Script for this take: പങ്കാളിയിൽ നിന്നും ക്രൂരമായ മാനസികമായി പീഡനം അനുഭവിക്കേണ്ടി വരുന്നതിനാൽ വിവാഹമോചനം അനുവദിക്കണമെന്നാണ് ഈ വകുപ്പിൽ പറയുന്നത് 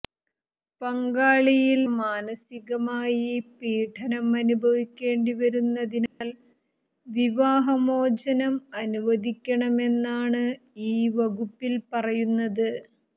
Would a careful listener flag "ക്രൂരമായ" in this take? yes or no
yes